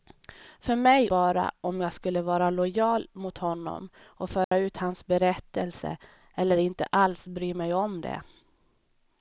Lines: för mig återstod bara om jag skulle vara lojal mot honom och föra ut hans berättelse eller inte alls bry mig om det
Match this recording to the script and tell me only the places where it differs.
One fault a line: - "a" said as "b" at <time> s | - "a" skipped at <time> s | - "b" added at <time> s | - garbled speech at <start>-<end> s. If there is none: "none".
- "återstod" skipped at 1.1 s